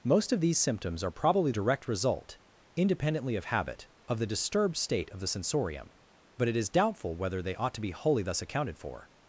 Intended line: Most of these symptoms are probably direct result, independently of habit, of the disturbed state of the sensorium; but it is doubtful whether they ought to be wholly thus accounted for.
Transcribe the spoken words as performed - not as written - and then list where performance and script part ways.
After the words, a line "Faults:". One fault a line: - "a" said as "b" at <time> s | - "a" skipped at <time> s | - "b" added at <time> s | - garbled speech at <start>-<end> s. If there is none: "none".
Most of these symptoms are probably direct result, independently of habit, of the disturbed state of the sensorium; but it is doubtful whether they ought to be wholly thus accounted for.
Faults:
none